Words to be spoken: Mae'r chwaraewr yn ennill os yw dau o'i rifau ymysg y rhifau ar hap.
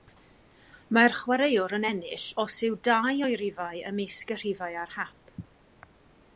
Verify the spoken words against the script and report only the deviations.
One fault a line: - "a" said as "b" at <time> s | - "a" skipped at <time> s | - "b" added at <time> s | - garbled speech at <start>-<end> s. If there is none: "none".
none